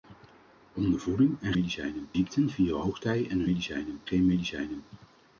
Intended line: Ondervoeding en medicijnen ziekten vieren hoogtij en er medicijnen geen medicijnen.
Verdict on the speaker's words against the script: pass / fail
pass